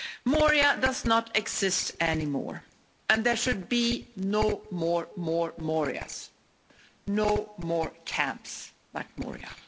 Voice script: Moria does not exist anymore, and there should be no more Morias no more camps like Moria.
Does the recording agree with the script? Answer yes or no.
no